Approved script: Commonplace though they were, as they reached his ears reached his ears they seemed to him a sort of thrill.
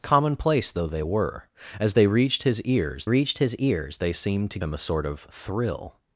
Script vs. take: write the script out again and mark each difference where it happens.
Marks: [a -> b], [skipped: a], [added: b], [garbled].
Commonplace though they were, as they reached his ears reached his ears they seemed to him a sort of thrill.